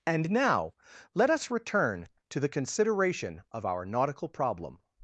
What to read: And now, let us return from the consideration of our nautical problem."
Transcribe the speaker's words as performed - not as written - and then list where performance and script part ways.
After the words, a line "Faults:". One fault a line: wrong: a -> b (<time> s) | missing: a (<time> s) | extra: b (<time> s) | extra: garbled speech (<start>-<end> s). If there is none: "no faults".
And now, let us return to the consideration of our nautical problem."
Faults:
wrong: from -> to (2.3 s)